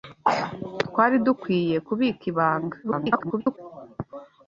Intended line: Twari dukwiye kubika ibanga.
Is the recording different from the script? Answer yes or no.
yes